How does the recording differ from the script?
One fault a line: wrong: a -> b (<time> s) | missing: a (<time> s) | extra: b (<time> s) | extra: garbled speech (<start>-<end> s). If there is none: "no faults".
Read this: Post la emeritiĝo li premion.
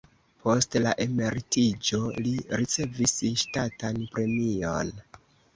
extra: ricevis ŝtatan (2.6 s)